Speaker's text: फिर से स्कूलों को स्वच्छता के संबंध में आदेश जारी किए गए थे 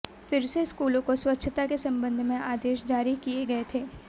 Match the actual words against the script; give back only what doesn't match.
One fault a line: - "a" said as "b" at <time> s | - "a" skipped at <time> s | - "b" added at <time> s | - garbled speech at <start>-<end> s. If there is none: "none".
none